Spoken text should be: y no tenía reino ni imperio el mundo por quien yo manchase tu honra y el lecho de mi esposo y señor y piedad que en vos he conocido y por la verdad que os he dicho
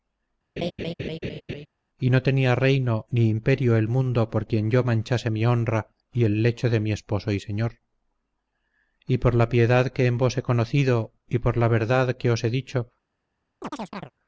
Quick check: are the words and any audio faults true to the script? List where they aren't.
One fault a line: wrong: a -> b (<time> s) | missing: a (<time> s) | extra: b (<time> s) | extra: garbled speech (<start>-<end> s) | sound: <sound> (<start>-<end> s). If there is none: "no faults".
sound: laugh (0.6-1.7 s)
wrong: tu -> mi (5.3 s)
extra: por la (9.2 s)
sound: chirp (13.6-14.1 s)